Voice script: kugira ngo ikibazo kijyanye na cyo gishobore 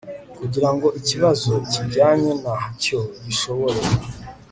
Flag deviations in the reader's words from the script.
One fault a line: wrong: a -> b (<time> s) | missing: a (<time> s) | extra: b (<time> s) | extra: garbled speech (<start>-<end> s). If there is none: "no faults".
no faults